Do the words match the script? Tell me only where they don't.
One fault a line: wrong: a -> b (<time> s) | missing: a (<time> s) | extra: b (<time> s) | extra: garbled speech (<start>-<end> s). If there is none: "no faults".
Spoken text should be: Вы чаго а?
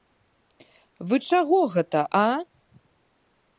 extra: гэта (1.8 s)